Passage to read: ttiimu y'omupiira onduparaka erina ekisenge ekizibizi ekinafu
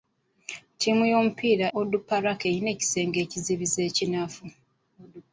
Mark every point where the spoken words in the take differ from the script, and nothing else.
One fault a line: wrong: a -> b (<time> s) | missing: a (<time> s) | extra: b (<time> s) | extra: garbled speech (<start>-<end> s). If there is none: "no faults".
no faults